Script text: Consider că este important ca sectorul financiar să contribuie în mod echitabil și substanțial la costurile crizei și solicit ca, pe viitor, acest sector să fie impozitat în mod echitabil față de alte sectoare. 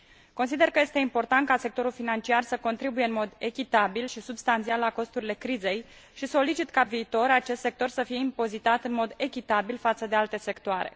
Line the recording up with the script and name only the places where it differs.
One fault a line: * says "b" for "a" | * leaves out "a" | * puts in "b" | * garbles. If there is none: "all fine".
* leaves out "pe"